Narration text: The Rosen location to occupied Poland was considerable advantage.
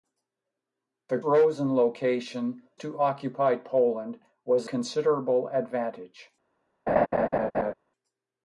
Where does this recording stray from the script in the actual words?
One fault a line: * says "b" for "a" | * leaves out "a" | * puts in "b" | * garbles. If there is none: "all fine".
all fine